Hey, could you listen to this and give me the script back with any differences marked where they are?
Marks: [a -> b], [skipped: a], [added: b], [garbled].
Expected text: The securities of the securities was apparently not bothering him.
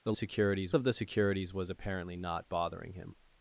The securities of the securities was apparently not bothering him.